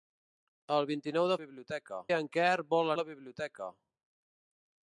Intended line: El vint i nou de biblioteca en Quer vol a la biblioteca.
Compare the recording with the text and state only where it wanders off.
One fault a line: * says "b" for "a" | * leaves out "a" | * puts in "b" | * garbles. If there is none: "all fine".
all fine